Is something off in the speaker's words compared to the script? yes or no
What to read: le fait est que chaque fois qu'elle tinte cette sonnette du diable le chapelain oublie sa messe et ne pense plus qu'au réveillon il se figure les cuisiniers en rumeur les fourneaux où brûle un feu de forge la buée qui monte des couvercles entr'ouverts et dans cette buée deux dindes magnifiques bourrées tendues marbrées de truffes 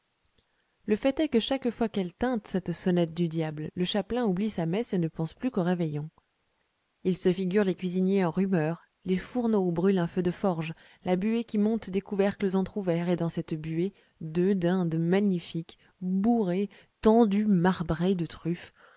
no